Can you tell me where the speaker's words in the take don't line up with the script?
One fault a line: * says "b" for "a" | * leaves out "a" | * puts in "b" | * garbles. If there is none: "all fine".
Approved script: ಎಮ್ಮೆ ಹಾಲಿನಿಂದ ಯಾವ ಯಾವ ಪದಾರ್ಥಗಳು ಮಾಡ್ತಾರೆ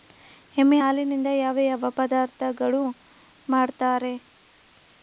all fine